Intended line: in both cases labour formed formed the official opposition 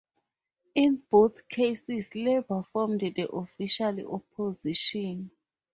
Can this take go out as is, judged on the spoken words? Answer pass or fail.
fail